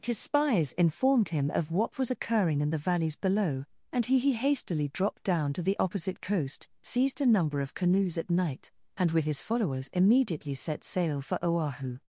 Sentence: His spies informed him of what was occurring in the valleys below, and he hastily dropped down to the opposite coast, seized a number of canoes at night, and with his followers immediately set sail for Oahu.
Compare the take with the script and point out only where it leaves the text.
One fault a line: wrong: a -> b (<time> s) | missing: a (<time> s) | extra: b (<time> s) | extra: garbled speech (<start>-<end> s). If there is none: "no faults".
extra: he (4.2 s)